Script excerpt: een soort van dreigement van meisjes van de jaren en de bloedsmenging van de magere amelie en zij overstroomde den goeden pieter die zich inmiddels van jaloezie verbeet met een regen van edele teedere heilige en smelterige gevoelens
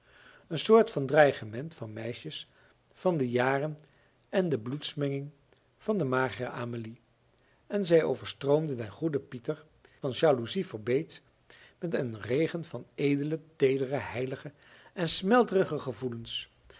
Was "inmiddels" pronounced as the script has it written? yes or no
no